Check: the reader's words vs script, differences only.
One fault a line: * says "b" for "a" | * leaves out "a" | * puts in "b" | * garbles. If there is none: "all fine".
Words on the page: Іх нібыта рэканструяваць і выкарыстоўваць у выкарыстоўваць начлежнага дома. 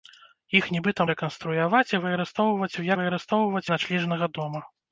all fine